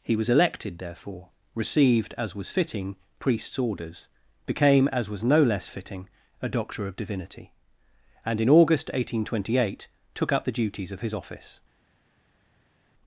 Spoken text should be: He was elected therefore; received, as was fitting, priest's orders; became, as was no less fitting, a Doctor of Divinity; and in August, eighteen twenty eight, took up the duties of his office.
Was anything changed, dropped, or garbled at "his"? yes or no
no